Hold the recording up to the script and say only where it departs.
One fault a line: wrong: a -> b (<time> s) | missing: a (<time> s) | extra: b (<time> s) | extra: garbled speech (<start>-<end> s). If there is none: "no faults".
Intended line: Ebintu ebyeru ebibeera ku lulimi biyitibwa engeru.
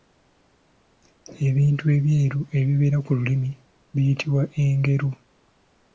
no faults